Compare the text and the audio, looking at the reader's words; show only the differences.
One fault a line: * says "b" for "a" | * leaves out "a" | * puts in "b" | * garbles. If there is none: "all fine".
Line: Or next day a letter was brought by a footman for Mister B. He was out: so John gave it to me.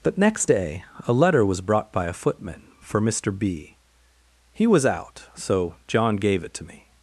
* says "But" for "Or"